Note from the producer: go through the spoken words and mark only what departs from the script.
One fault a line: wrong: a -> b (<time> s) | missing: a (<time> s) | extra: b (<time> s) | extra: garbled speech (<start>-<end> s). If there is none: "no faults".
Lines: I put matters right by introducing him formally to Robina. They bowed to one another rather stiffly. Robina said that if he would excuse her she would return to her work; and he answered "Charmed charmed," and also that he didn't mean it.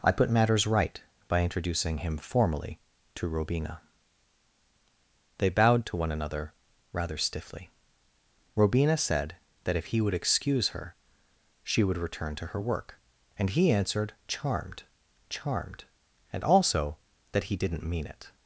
no faults